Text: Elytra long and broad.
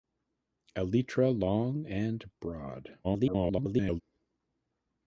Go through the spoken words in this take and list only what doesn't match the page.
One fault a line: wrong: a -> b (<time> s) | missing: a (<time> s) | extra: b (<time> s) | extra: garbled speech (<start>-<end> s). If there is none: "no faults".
extra: garbled speech (3.0-4.0 s)